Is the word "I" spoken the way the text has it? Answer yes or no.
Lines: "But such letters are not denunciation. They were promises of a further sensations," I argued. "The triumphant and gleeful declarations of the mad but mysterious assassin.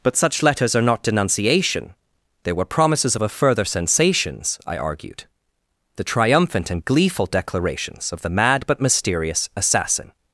yes